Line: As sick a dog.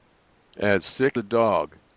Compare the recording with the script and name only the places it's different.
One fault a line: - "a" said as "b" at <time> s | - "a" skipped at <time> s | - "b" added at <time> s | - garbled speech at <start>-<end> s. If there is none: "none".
none